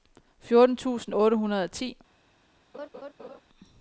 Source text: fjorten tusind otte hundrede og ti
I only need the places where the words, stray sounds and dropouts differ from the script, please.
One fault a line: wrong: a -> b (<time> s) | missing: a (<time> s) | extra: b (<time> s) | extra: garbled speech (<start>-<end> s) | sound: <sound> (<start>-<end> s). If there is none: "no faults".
sound: laugh (2.7-3.4 s)